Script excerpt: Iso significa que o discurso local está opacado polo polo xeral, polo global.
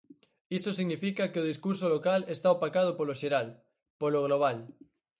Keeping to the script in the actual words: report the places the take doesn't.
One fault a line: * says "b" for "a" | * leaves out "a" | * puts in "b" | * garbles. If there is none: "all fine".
* leaves out "polo"